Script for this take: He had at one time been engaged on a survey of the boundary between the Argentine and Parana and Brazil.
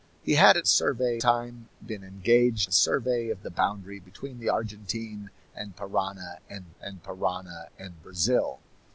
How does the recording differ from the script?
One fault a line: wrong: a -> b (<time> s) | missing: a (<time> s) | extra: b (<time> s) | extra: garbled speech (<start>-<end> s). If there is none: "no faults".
wrong: one -> survey (0.7 s)
missing: on (2.7 s)
extra: and Parana and (6.8 s)